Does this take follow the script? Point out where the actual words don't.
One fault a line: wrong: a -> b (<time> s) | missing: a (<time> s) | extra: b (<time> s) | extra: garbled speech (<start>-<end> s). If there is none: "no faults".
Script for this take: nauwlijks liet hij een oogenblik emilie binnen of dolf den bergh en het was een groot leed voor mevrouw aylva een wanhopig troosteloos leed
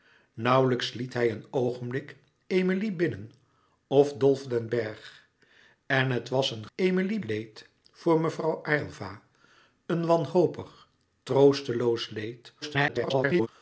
wrong: groot -> emilie (6.8 s)
extra: garbled speech (12.6-13.5 s)